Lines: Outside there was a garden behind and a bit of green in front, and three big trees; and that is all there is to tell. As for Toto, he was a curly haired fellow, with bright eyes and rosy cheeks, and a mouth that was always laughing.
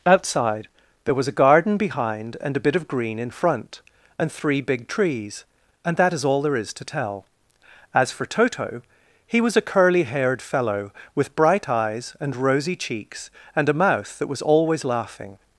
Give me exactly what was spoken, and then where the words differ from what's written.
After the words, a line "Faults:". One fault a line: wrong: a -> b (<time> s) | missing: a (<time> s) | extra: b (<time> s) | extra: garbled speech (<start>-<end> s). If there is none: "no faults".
Outside there was a garden behind and a bit of green in front, and three big trees; and that is all there is to tell. As for Toto, he was a curly haired fellow, with bright eyes and rosy cheeks, and a mouth that was always laughing.
Faults:
no faults